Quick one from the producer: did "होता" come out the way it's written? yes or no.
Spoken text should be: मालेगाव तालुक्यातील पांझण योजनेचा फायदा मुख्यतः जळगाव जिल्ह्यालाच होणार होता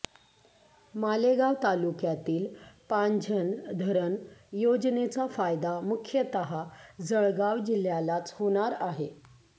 no